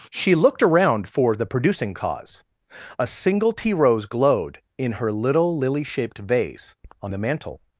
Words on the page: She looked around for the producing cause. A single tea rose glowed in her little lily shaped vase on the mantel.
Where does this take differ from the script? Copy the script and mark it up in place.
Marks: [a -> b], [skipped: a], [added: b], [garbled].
She looked around for the producing cause. A single tea rose glowed in her little lily shaped vase on the mantel.